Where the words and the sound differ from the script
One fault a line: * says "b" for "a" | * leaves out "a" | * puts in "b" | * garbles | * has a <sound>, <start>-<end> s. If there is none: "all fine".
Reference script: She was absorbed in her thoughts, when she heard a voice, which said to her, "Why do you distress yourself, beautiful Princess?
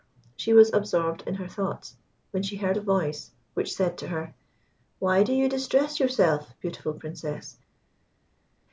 all fine